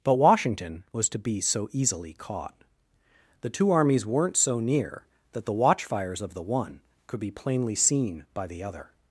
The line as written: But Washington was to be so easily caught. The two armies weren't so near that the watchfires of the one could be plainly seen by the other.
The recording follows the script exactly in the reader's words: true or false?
true